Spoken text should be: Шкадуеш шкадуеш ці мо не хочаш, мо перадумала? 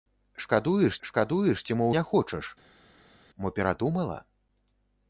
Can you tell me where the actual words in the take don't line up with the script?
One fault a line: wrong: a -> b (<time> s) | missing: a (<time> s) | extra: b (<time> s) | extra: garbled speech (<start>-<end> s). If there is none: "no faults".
no faults